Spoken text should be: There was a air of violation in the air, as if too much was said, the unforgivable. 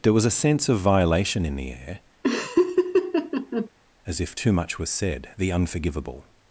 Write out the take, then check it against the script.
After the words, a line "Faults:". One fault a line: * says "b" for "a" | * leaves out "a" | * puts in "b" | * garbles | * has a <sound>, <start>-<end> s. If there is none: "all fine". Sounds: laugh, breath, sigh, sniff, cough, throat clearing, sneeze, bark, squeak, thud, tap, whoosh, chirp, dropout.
There was a sense of violation in the air, as if too much was said, the unforgivable.
Faults:
* says "sense" for "air"
* has a laugh, 2.2-3.7 s